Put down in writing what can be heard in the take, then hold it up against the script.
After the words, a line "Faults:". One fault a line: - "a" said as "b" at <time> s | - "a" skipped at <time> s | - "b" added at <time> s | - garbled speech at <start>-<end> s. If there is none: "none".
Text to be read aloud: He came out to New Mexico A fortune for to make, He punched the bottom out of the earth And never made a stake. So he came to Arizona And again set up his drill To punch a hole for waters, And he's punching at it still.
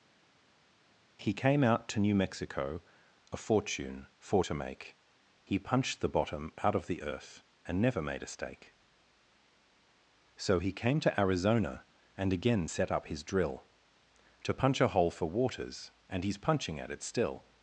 He came out to New Mexico A fortune for to make, He punched the bottom out of the earth And never made a stake. So he came to Arizona And again set up his drill To punch a hole for waters, And he's punching at it still.
Faults:
none